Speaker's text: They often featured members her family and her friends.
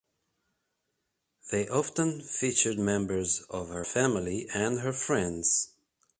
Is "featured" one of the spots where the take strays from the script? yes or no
no